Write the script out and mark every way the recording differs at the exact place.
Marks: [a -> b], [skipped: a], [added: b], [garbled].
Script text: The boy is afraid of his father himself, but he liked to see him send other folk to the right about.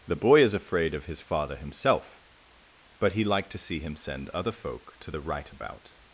The boy is afraid of his father himself, but he liked to see him send other folk to the right about.